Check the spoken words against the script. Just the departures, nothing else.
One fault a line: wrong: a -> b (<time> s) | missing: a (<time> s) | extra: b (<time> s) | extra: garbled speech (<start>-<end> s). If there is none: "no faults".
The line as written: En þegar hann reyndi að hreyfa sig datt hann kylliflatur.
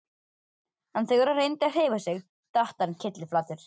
no faults